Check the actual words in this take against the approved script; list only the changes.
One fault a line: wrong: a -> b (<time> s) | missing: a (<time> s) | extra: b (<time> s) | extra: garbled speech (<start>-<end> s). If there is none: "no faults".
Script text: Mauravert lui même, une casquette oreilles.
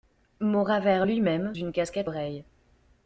no faults